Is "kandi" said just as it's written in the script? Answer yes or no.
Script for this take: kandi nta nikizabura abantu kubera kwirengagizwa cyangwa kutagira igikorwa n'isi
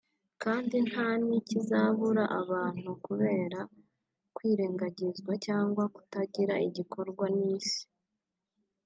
yes